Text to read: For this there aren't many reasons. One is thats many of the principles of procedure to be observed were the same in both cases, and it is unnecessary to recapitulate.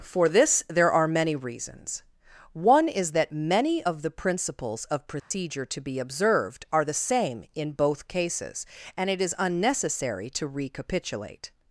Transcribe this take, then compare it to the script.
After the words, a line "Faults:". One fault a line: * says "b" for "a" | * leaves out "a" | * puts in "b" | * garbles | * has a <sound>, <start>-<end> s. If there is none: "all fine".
For this there are many reasons. One is that many of the principles of procedure to be observed are the same in both cases, and it is unnecessary to recapitulate.
Faults:
* says "are" for "aren't"
* says "that" for "thats"
* has a dropout, 5.2-5.3 s
* says "are" for "were"